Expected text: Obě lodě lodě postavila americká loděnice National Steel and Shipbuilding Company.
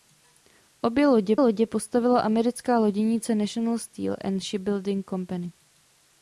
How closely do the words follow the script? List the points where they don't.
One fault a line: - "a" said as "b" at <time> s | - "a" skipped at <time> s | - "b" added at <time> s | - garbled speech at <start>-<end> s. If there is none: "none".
none